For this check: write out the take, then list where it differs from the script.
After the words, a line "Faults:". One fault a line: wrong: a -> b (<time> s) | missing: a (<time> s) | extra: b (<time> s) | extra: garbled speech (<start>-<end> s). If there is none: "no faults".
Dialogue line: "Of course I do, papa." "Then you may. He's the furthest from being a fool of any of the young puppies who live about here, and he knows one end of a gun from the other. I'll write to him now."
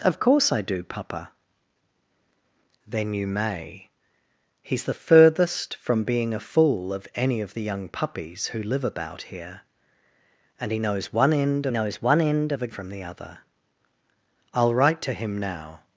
"Of course I do, papa." "Then you may. He's the furthest from being a fool of any of the young puppies who live about here, and he knows one end knows one end of a from the other. I'll write to him now."
Faults:
extra: knows one end (11.7 s)
missing: gun (12.7 s)